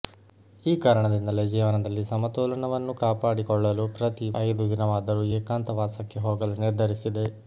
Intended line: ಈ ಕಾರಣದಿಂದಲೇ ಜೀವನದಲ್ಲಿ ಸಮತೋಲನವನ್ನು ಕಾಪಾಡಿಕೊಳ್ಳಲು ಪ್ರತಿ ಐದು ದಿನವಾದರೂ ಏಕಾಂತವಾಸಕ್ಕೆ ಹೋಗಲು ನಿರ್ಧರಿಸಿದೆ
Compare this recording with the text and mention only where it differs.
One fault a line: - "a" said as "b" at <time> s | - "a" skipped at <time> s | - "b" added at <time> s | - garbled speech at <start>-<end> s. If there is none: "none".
none